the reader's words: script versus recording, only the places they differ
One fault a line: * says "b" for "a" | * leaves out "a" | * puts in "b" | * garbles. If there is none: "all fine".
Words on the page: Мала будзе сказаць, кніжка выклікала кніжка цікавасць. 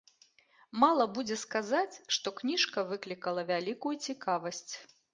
* puts in "што"
* says "вялікую" for "кніжка"